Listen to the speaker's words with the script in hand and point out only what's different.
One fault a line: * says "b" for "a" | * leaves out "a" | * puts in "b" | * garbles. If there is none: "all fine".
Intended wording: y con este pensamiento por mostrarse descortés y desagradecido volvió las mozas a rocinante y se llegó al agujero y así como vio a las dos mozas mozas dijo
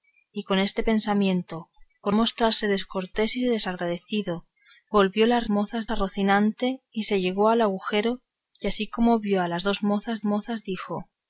all fine